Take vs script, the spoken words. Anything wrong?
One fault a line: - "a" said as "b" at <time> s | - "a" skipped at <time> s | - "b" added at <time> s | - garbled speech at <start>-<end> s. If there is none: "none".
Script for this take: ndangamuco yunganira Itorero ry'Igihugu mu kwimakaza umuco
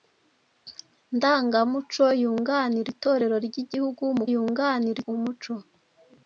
- "kwimakaza" said as "yunganira" at 4.3 s